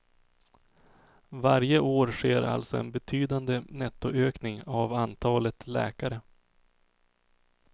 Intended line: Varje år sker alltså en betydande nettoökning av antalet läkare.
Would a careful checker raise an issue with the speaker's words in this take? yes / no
no